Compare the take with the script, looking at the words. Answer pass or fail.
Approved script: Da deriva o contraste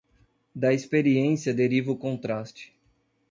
fail